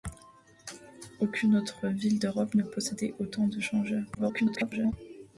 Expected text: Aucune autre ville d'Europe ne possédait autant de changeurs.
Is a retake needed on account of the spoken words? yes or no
yes